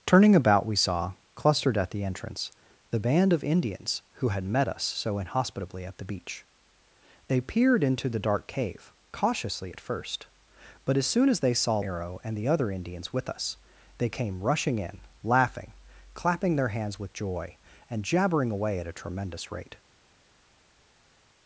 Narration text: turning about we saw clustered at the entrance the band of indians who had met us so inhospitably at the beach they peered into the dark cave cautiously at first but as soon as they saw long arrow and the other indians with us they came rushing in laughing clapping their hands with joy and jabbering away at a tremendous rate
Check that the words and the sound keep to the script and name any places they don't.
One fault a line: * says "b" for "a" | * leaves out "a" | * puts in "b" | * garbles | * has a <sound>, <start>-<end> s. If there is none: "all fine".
* leaves out "long"